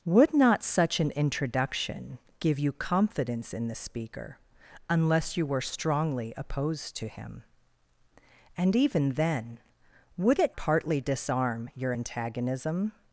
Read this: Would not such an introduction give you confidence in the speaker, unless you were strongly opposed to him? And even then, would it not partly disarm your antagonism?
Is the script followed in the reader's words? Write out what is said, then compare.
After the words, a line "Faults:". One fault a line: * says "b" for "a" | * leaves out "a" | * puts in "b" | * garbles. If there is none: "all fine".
Would not such an introduction give you confidence in the speaker, unless you were strongly opposed to him? And even then, would it partly disarm your antagonism?
Faults:
* leaves out "not"